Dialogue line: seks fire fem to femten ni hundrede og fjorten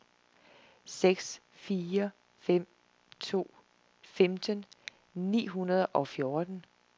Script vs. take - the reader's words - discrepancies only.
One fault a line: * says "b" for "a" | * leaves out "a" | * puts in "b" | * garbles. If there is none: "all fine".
all fine